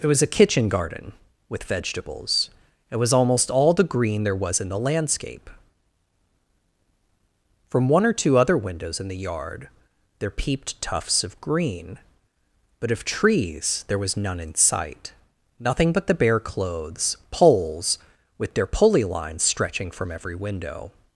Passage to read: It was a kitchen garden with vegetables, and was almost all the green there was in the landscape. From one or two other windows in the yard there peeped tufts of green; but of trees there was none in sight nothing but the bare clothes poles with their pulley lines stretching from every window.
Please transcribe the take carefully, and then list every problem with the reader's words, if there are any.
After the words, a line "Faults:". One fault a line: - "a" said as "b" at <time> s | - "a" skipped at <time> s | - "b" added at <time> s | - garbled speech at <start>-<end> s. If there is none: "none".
It was a kitchen garden with vegetables, it was almost all the green there was in the landscape. From one or two other windows in the yard there peeped tufts of green; but of trees there was none in sight nothing but the bare clothes poles with their pulley lines stretching from every window.
Faults:
- "and" said as "it" at 2.9 s